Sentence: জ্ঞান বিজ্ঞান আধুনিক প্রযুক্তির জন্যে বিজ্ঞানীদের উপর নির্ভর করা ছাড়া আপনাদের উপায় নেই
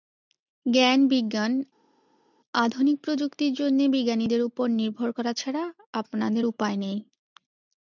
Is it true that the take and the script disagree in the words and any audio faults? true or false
false